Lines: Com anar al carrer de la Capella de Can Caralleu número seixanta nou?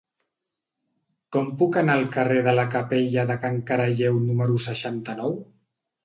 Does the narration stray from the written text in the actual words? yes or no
yes